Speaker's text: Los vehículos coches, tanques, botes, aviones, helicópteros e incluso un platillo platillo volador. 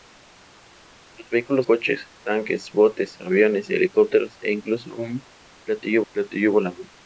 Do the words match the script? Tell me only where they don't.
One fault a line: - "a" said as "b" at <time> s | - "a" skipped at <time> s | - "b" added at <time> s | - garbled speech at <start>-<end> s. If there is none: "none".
none